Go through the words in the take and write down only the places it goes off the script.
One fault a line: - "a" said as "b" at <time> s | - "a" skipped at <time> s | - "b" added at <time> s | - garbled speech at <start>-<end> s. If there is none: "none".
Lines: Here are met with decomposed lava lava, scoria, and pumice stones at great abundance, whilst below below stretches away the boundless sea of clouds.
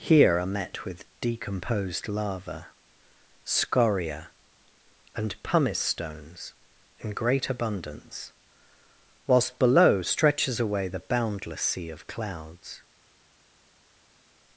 - "lava" skipped at 2.7 s
- "at" said as "in" at 7.0 s
- "below" skipped at 10.0 s